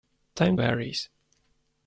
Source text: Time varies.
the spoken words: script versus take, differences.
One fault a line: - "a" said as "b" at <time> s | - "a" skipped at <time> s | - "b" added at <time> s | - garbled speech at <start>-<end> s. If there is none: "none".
none